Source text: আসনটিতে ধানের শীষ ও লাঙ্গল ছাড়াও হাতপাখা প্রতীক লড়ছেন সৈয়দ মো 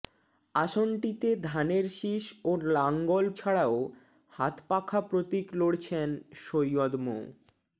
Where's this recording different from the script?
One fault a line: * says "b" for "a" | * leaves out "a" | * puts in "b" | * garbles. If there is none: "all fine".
all fine